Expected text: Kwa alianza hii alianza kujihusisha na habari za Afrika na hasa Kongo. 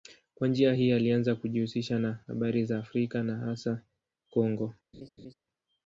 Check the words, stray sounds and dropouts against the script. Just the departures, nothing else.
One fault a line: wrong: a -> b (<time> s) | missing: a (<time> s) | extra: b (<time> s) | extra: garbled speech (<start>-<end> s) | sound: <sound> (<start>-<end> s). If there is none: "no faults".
wrong: alianza -> njia (0.5 s)
sound: laugh (4.9-5.3 s)